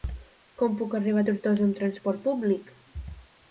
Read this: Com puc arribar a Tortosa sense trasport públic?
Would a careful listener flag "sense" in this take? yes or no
yes